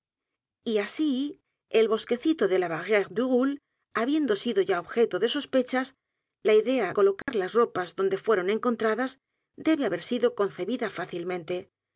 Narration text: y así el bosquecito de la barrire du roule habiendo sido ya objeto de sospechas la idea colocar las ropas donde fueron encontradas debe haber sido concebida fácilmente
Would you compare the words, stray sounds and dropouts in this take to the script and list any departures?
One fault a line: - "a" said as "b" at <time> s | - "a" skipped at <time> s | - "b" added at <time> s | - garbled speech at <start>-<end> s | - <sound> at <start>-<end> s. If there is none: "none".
- dropout at 7.2-7.3 s